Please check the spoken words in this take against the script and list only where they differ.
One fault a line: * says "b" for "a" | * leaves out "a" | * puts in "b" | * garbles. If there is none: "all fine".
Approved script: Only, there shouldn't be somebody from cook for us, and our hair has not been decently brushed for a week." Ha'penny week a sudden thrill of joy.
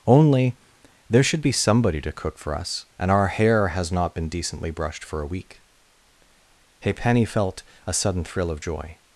* says "should" for "shouldn't"
* says "to" for "from"
* says "felt" for "week"